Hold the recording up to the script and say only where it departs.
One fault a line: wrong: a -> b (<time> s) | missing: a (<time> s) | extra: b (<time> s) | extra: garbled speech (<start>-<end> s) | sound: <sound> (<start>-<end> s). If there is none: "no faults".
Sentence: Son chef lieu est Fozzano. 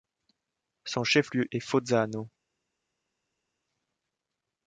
no faults